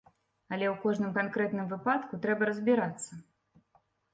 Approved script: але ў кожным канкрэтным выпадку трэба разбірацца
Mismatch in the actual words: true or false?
false